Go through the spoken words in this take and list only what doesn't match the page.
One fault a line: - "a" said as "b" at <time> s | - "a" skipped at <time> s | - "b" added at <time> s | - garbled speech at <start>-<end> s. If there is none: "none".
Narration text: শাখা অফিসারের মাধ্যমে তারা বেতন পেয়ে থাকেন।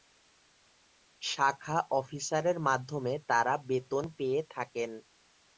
none